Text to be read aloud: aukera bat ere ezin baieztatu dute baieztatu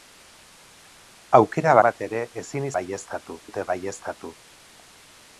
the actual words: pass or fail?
pass